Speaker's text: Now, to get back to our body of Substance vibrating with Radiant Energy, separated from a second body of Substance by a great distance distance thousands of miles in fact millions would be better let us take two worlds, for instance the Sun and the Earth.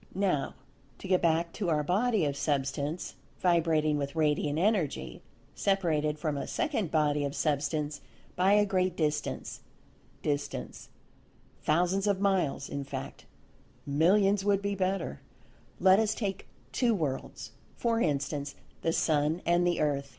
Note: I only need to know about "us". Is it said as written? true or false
true